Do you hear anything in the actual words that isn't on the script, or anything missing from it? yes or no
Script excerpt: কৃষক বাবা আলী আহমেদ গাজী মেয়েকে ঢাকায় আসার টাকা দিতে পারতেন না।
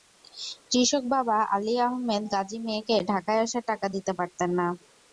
no